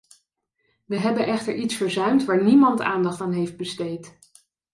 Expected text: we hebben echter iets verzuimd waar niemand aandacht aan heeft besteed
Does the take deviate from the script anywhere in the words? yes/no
no